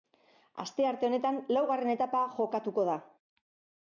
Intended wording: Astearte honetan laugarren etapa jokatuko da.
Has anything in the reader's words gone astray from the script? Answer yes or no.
no